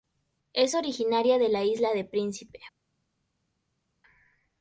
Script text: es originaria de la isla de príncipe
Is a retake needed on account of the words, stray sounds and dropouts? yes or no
no